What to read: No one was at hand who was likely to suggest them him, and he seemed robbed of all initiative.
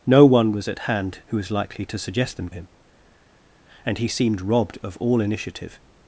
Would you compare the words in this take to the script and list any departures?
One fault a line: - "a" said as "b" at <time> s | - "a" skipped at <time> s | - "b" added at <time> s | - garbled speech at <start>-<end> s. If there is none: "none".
none